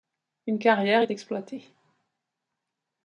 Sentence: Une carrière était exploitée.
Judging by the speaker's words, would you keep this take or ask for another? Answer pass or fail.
fail